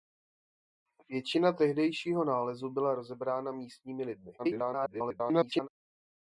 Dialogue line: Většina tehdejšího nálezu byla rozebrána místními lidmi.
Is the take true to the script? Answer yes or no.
no